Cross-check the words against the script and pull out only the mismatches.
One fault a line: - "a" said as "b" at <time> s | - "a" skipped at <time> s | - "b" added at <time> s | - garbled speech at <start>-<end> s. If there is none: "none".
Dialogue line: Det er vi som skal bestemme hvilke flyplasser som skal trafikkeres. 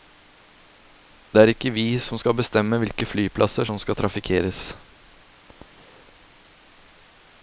- "ikke" added at 1.5 s